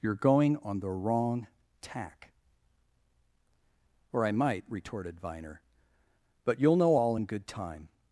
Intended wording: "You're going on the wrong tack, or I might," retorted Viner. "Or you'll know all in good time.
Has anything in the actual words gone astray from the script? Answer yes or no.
yes